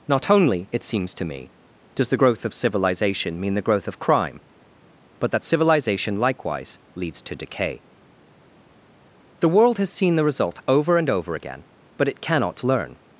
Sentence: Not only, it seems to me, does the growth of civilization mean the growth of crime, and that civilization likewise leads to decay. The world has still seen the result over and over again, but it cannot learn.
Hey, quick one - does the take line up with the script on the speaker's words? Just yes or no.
no